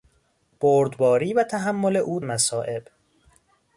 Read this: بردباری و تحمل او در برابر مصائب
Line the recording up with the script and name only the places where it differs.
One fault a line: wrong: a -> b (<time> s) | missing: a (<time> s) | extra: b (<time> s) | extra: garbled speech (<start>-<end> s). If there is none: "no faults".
missing: در برابر (2.2 s)